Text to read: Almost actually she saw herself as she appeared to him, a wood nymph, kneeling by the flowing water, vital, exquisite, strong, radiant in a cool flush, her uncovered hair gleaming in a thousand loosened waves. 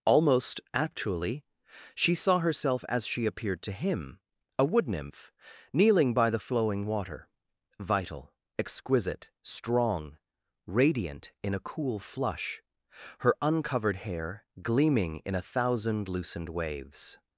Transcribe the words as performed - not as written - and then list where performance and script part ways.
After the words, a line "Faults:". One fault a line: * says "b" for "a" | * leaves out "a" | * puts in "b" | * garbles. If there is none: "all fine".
Almost actually she saw herself as she appeared to him, a wood nymph, kneeling by the flowing water, vital, exquisite, strong, radiant in a cool flush, her uncovered hair gleaming in a thousand loosened waves.
Faults:
all fine